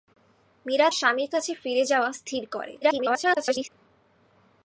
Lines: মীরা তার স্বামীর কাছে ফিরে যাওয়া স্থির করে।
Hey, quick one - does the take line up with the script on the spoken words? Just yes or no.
no